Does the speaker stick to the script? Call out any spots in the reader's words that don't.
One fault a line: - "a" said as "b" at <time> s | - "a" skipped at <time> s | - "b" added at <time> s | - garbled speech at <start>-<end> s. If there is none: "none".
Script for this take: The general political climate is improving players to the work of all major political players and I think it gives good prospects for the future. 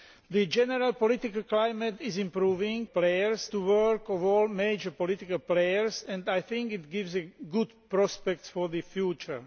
none